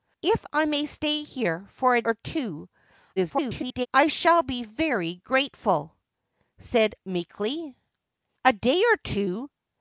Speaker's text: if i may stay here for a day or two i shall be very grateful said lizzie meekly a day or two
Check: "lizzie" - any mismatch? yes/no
yes